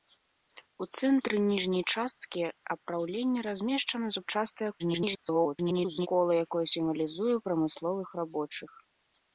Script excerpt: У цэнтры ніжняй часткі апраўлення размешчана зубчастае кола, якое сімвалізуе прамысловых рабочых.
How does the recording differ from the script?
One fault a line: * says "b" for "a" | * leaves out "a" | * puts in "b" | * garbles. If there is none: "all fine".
* garbles